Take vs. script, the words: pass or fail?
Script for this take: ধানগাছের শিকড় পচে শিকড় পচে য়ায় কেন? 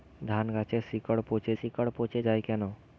pass